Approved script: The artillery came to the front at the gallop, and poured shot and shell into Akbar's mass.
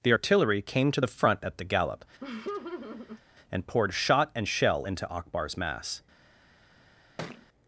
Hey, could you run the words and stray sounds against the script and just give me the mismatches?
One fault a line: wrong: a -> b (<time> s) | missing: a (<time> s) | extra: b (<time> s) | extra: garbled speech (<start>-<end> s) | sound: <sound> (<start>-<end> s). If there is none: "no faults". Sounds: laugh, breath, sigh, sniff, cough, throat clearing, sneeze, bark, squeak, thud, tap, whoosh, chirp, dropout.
sound: laugh (2.2-3.2 s)
sound: thud (7.2-7.5 s)